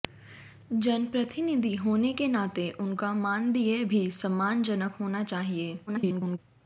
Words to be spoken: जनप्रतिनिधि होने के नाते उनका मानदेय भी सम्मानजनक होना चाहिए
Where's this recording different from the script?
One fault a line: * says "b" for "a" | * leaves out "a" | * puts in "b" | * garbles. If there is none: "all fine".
* garbles